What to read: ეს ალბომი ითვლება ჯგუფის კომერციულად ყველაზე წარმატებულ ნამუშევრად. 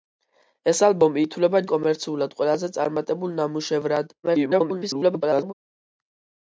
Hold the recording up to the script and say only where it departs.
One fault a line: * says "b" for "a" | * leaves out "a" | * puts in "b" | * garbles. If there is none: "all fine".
* leaves out "ჯგუფის"
* garbles